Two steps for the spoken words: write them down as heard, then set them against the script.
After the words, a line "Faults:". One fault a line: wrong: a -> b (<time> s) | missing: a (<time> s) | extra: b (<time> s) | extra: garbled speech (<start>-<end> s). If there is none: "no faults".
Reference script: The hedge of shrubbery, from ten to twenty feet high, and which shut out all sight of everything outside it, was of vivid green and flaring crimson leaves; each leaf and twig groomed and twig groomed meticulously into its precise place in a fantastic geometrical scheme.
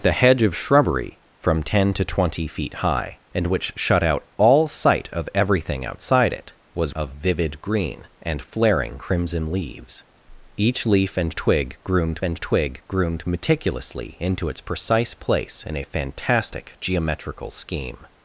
The hedge of shrubbery, from ten to twenty feet high, and which shut out all sight of everything outside it, was of vivid green and flaring crimson leaves; each leaf and twig groomed and twig groomed meticulously into its precise place in a fantastic geometrical scheme.
Faults:
no faults